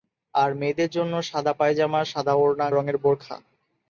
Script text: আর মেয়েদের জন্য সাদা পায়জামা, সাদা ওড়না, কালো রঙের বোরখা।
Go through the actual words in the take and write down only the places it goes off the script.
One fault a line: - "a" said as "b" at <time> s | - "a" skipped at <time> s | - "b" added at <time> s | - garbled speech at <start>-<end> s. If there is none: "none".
- "কালো" skipped at 2.7 s